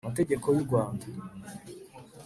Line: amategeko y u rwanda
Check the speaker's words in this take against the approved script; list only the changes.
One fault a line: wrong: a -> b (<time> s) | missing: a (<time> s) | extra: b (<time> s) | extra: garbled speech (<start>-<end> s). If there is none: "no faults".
no faults